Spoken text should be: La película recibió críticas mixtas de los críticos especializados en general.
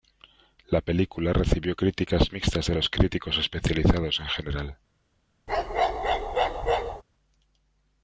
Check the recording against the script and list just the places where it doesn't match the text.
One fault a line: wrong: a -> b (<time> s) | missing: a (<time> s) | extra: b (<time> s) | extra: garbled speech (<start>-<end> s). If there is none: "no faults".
no faults